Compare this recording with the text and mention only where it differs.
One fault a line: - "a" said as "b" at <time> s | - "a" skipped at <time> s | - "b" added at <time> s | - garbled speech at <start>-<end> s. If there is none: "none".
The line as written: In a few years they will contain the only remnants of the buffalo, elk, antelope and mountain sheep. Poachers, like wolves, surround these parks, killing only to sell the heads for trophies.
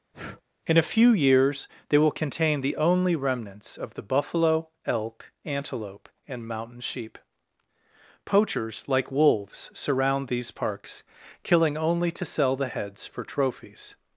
none